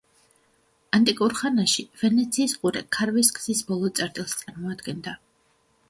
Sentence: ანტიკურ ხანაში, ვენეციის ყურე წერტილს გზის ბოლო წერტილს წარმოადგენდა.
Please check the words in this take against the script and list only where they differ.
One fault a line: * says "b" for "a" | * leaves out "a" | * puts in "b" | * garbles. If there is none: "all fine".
* says "ქარვის" for "წერტილს"